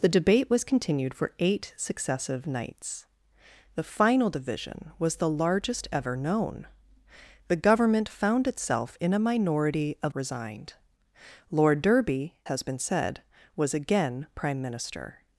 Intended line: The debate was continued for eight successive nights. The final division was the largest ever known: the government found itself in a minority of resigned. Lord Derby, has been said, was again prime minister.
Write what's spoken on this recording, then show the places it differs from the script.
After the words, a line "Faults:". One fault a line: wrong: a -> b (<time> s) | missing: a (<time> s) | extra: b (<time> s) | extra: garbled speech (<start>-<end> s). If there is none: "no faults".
The debate was continued for eight successive nights. The final division was the largest ever known: the government found itself in a minority of resigned. Lord Derby, has been said, was again prime minister.
Faults:
no faults